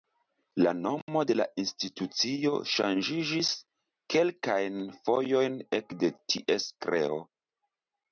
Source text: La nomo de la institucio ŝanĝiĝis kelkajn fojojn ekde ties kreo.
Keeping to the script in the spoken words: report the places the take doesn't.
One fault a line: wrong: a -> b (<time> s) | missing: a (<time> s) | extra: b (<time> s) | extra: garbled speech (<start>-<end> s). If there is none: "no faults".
no faults